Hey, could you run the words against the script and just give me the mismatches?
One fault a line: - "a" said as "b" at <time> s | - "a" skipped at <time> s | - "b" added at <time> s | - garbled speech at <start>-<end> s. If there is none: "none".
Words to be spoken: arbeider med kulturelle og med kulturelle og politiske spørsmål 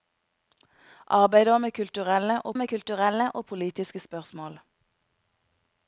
none